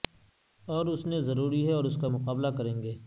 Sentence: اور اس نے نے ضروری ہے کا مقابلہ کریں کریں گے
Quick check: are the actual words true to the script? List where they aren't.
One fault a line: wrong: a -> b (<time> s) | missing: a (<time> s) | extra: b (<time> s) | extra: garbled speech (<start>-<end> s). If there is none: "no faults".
missing: نے (1.2 s)
extra: اور اس (1.7 s)
missing: کریں (2.8 s)